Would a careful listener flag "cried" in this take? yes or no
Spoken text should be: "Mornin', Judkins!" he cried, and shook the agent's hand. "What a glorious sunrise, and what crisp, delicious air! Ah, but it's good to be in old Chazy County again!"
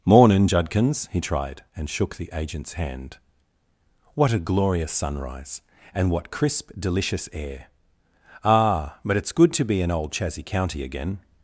yes